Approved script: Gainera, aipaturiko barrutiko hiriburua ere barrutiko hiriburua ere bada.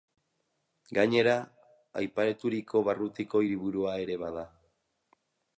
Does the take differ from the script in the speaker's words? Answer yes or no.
yes